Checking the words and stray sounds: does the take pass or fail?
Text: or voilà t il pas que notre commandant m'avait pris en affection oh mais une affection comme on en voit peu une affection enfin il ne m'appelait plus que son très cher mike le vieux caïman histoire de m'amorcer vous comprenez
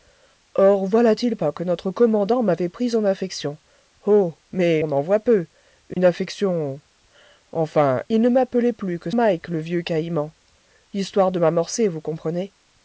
fail